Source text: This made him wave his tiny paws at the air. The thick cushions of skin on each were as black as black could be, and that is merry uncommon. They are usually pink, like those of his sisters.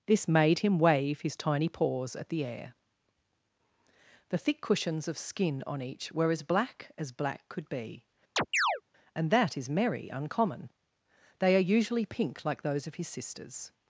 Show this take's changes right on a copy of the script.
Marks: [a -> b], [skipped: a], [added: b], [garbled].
This made him wave his tiny paws at the air. The thick cushions of skin on each were as black as black could be, and that is merry uncommon. They are usually pink, like those of his sisters.